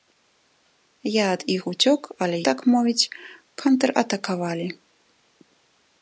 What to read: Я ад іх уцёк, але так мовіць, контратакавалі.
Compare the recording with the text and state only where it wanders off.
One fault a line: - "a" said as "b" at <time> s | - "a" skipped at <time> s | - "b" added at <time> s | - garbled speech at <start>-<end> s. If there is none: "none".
none